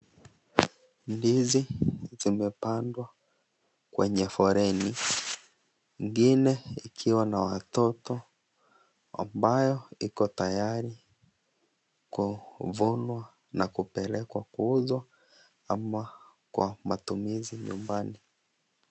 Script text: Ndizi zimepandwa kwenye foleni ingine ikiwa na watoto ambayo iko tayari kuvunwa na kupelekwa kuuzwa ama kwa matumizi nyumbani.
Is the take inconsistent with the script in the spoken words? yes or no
no